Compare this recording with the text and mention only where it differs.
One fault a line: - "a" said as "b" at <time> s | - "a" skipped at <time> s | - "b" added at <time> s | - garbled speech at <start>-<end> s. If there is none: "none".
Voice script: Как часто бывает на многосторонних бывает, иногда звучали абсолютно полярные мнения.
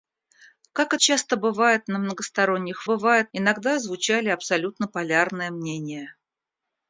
none